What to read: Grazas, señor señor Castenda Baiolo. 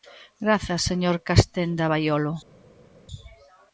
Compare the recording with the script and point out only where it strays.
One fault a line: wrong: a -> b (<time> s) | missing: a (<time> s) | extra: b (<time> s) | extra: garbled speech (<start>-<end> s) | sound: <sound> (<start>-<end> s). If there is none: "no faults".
missing: señor (1.1 s)